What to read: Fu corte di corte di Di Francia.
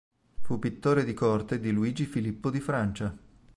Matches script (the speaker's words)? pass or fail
fail